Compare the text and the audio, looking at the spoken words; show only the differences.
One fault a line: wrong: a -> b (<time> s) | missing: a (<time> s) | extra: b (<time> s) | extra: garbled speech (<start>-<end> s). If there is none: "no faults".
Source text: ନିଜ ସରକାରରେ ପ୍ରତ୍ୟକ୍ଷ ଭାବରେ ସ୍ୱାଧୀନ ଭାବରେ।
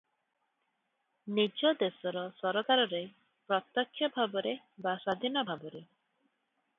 extra: ଦେଶର (1.8 s)
extra: ବା (4.8 s)